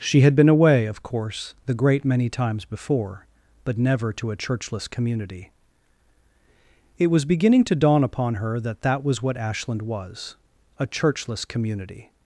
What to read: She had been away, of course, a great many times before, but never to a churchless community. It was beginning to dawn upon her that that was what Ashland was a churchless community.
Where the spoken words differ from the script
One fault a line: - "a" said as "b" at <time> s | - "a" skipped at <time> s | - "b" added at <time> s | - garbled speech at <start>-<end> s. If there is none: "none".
- "a" said as "the" at 1.7 s